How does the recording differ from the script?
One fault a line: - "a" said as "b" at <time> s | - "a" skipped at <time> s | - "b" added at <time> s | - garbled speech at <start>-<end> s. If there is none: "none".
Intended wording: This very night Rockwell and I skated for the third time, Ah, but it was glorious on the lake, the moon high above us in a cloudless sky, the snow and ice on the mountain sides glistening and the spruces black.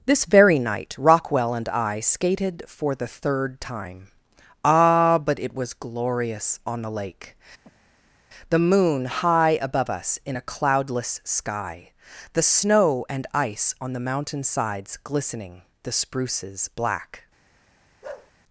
- "and" skipped at 15.6 s